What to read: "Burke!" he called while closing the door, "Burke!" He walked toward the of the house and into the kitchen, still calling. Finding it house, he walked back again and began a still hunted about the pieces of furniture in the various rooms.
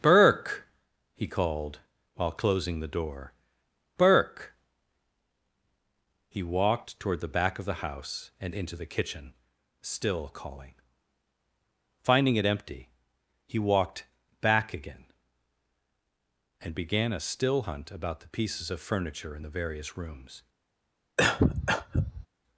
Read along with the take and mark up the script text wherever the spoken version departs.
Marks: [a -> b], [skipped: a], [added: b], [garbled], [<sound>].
"Burke!" he called while closing the door, "Burke!" He walked toward the [added: back] of the house and into the kitchen, still calling. Finding it [house, -> empty] he walked back again and began a still [hunted -> hunt] about the pieces of furniture in the various rooms. [cough]